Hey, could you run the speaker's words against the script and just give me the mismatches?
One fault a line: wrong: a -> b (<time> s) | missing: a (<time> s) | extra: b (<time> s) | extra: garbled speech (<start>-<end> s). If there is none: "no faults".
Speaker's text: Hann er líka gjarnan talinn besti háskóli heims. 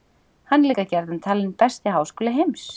no faults